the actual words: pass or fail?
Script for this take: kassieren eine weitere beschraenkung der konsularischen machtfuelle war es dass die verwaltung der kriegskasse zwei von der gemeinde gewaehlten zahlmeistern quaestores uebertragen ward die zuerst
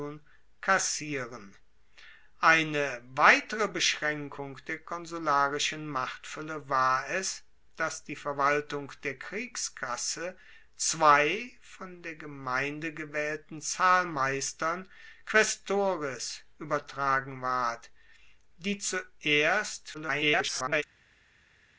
fail